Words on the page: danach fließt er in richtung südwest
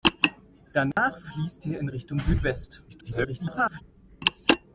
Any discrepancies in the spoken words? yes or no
yes